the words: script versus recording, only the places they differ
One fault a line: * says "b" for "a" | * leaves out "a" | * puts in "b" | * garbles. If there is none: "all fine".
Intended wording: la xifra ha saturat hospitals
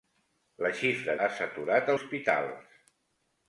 all fine